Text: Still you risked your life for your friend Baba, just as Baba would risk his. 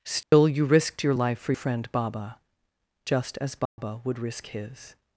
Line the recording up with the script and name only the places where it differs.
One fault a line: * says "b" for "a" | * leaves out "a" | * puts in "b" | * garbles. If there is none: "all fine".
* leaves out "your"